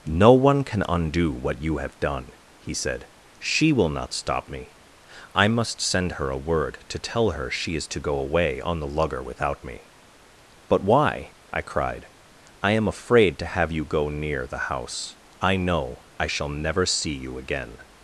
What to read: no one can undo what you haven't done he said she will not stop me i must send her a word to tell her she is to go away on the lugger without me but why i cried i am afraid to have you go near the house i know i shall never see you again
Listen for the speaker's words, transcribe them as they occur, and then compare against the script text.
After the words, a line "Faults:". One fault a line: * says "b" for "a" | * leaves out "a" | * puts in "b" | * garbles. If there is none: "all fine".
no one can undo what you have done he said she will not stop me i must send her a word to tell her she is to go away on the lugger without me but why i cried i am afraid to have you go near the house i know i shall never see you again
Faults:
* says "have" for "haven't"